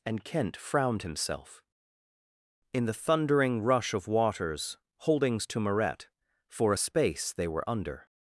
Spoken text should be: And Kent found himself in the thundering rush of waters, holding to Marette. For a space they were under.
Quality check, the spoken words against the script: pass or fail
fail